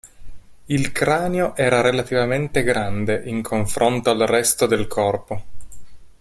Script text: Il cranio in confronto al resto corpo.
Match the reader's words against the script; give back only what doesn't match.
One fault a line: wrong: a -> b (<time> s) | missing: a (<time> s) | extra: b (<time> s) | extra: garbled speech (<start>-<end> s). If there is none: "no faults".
extra: era relativamente grande (1.6 s)
extra: del (4.7 s)